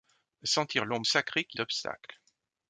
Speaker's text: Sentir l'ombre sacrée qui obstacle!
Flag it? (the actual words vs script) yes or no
no